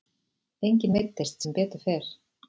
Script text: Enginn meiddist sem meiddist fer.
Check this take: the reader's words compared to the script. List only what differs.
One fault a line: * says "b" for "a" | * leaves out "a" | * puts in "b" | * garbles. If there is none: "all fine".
* says "betur" for "meiddist"